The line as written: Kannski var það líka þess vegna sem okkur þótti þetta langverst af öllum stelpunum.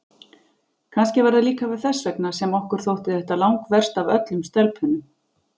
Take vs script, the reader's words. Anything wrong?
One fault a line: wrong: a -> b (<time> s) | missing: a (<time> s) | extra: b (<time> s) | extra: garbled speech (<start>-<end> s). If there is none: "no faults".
no faults